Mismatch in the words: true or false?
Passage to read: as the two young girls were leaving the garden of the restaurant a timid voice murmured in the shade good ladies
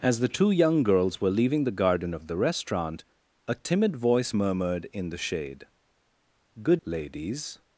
false